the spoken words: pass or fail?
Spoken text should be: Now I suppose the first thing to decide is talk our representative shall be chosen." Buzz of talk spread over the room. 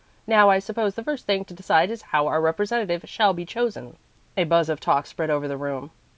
fail